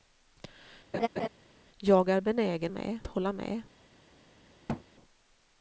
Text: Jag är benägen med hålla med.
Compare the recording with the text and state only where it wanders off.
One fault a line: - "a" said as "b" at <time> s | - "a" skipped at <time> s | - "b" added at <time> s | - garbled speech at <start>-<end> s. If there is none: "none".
none